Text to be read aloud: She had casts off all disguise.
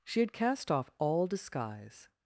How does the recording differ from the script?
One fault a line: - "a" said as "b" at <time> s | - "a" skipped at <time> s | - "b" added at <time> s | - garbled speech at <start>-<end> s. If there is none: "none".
- "casts" said as "cast" at 0.3 s